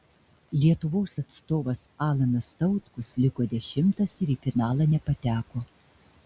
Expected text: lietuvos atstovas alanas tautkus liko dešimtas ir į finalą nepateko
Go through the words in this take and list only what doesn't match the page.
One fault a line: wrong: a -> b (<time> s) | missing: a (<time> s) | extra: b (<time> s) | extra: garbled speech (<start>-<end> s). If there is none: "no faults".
no faults